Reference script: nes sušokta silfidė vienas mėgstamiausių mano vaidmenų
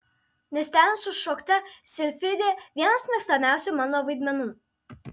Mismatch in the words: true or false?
true